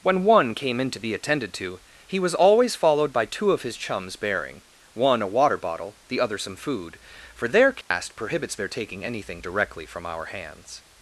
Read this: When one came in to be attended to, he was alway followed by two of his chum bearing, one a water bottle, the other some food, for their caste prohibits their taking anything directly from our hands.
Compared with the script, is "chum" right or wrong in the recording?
wrong